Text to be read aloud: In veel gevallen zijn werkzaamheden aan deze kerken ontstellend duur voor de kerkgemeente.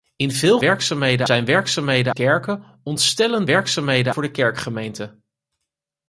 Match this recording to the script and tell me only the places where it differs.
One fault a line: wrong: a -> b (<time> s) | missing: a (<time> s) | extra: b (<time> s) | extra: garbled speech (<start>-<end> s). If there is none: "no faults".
wrong: gevallen -> werkzaamheden (0.6 s)
missing: aan deze (2.1 s)
wrong: duur -> werkzaamheden (3.4 s)